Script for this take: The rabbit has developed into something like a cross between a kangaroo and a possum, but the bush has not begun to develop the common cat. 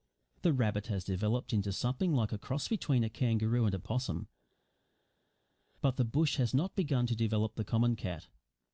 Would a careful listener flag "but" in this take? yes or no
no